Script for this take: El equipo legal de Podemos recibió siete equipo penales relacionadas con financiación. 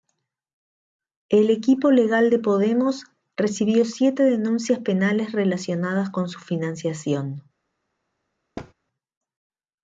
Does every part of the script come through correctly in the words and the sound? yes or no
no